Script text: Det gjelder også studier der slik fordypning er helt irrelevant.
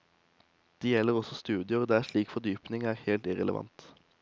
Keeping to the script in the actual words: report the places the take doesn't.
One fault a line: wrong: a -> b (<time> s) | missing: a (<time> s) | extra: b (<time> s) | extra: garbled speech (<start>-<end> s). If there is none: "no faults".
no faults